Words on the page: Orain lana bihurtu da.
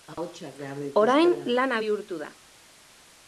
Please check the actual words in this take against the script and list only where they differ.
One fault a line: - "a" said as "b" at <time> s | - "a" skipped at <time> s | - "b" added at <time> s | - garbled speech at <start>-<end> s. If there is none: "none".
none